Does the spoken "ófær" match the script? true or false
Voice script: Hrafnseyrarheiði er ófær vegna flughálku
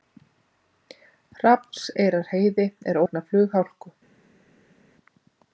false